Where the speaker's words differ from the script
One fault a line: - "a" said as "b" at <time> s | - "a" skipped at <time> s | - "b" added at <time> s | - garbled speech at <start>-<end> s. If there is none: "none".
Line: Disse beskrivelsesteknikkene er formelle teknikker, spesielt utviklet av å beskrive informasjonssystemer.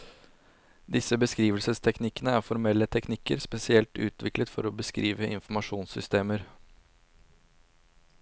- "av" said as "for" at 4.5 s